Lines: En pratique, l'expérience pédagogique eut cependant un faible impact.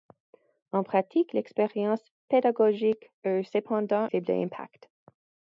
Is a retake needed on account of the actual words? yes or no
yes